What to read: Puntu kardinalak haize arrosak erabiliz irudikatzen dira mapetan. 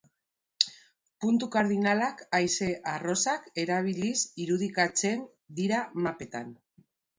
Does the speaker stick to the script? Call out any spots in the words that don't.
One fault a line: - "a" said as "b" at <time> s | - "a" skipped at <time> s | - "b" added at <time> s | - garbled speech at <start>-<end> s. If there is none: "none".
none